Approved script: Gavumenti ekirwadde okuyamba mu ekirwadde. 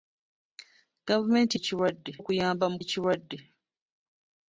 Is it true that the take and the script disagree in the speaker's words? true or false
false